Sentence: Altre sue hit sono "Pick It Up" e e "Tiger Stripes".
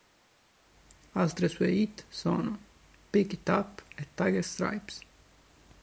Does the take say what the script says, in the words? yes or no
no